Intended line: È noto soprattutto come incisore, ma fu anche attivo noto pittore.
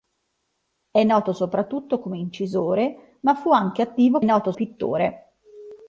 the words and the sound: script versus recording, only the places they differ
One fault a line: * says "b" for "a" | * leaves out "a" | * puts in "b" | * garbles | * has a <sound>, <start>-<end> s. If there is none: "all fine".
all fine